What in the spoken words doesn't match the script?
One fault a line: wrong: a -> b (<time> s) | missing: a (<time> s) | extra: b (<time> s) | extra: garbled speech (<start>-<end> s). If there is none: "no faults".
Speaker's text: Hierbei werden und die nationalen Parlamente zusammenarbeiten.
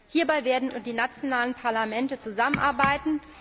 no faults